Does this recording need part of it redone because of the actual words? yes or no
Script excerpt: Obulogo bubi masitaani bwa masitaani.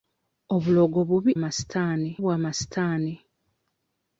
no